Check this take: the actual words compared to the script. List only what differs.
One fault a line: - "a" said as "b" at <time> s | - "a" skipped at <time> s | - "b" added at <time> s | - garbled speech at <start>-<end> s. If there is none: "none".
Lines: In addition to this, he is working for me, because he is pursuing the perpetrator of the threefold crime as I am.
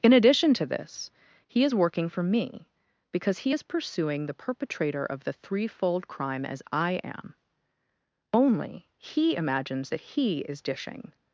- "Only he imagines that he is dishing" added at 8.3 s